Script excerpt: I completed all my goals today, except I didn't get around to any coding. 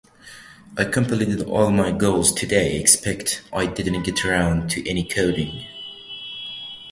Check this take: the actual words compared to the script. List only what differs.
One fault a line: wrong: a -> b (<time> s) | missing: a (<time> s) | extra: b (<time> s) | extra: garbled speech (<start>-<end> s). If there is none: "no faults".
no faults